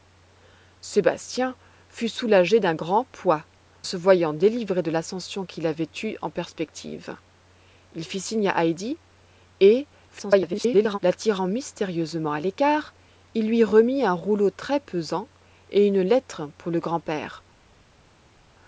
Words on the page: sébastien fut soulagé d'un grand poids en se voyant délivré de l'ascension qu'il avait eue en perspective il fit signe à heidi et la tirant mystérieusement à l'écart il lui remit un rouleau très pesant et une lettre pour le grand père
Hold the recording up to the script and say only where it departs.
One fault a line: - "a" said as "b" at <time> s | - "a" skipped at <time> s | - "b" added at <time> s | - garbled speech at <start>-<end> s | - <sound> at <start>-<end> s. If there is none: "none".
- "en" skipped at 3.5 s
- garbled speech at 10.1-11.0 s